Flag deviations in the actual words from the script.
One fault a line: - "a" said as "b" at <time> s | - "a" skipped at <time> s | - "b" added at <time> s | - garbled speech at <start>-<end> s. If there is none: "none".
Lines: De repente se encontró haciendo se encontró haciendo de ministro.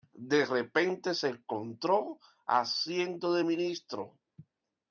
- "se encontró haciendo" skipped at 3.3 s